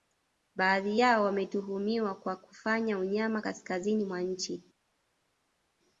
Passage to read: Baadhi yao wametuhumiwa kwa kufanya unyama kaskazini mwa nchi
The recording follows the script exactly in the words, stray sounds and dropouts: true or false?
true